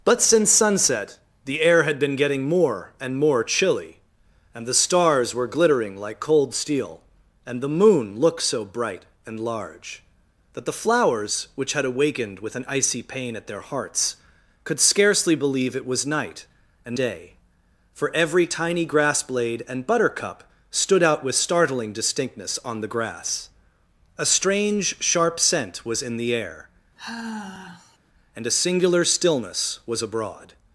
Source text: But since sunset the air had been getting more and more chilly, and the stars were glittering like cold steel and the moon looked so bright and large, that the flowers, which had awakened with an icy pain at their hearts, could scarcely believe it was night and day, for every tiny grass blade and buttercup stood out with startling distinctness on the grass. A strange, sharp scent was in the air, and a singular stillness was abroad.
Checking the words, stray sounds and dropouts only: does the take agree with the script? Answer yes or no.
no